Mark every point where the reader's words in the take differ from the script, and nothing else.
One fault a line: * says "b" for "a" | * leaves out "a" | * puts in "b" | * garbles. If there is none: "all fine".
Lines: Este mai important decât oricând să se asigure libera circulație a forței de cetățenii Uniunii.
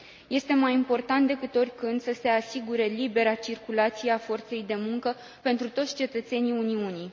* puts in "muncă pentru toți"